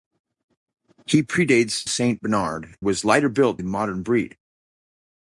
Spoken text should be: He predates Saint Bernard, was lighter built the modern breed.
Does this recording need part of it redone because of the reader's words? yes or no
no